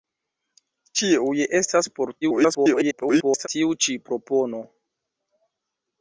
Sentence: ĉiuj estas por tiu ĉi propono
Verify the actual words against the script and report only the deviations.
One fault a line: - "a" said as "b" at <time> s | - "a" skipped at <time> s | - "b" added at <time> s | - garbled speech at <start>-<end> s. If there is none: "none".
- garbled speech at 2.2-3.5 s